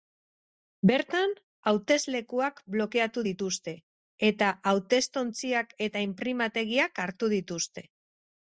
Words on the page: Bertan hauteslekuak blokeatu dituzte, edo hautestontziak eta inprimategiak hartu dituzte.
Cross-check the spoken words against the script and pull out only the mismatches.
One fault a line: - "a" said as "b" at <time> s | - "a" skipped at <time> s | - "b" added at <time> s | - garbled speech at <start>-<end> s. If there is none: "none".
- "edo" said as "eta" at 4.3 s